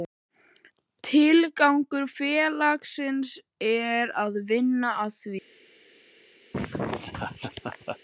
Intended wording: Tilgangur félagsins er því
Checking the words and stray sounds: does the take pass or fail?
fail